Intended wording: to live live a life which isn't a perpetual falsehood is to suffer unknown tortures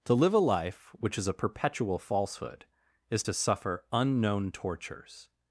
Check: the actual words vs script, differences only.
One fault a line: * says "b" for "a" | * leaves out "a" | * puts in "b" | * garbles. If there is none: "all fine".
* leaves out "live"
* says "is" for "isn't"